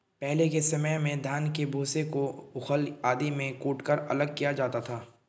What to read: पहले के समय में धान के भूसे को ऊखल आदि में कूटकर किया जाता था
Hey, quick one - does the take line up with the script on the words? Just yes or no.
no